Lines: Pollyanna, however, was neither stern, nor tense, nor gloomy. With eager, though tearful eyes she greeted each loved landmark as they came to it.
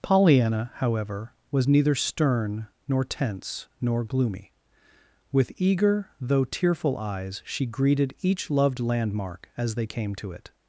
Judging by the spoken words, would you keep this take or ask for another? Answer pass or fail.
pass